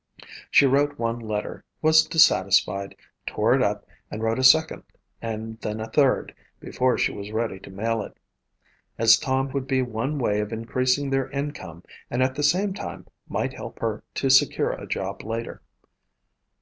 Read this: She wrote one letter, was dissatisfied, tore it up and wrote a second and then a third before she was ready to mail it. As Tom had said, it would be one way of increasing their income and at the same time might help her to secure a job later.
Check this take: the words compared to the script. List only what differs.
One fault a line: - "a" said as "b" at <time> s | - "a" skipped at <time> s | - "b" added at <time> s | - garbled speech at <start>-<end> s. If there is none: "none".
- "had said it" skipped at 9.5 s